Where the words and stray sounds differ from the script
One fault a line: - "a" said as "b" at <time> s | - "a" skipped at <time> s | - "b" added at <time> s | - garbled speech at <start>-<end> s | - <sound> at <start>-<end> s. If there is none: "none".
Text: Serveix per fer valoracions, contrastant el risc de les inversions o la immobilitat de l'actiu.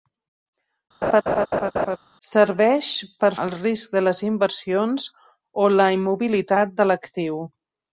- laugh at 1.0-2.0 s
- "fer valoracions contrastant" skipped at 3.3 s